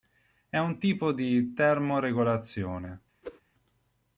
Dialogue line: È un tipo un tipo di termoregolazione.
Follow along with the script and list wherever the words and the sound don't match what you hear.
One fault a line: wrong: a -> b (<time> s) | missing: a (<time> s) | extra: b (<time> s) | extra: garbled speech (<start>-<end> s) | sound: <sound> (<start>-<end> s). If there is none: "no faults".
missing: un tipo (1.1 s)
sound: whoosh (3.2-3.4 s)